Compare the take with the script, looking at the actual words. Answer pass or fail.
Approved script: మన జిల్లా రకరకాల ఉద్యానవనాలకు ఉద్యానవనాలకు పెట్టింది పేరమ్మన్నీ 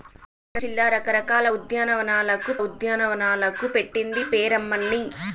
pass